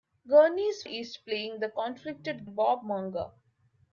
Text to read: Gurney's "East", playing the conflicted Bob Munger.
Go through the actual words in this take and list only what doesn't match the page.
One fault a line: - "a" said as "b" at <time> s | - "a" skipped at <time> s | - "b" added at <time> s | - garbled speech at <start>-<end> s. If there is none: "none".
none